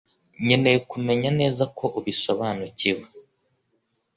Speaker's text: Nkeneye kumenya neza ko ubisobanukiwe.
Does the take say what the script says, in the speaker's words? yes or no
yes